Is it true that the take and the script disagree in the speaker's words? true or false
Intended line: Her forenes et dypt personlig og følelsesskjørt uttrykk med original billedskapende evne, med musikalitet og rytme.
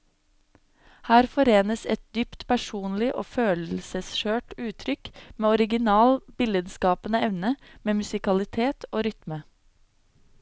false